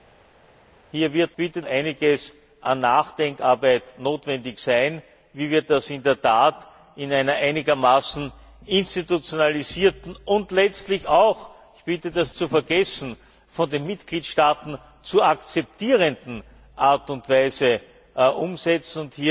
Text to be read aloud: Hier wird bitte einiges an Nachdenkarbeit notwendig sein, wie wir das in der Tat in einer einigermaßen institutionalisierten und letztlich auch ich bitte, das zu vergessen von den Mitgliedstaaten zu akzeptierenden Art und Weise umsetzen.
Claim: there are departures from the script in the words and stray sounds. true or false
false